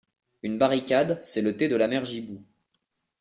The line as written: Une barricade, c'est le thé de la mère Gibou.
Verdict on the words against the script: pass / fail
pass